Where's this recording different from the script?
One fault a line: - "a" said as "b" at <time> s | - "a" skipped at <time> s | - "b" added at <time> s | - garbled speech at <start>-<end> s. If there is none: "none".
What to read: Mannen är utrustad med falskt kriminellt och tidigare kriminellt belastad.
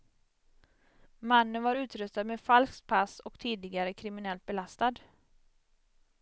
- "är" said as "var" at 1.6 s
- "kriminellt" said as "pass" at 2.9 s